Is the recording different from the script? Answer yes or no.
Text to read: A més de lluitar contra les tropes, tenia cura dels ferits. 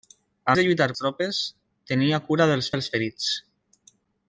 yes